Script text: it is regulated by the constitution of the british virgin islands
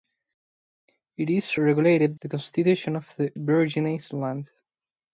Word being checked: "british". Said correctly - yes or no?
no